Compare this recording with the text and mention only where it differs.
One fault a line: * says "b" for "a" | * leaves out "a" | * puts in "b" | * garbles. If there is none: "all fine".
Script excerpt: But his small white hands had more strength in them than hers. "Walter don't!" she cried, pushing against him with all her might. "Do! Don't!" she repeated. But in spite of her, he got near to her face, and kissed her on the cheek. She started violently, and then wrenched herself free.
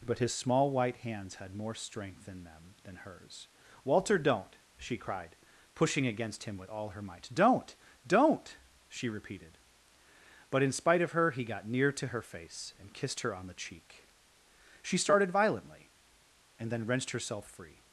* says "Don't" for "Do"